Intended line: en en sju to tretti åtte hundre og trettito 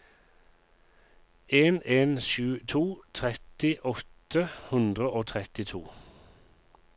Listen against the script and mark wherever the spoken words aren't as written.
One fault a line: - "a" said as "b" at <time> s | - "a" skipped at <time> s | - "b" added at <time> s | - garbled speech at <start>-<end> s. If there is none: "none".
none